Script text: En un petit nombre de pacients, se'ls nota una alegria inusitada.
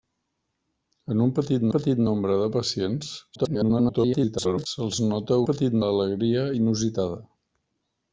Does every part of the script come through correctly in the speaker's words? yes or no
no